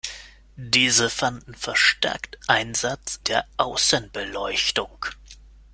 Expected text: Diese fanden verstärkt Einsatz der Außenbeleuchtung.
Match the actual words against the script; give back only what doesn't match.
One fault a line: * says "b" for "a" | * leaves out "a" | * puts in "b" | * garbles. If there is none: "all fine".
all fine